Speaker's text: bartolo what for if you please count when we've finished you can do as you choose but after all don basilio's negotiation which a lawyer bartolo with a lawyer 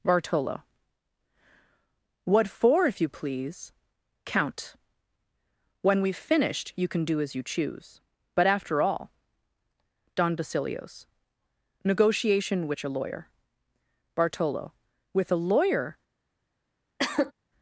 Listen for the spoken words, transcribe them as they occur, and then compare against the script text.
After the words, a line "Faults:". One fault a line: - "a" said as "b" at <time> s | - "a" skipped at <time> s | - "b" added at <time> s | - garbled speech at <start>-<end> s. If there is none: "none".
bartolo what for if you please count when we've finished you can do as you choose but after all don basilio's negotiation which a lawyer bartolo with a lawyer
Faults:
none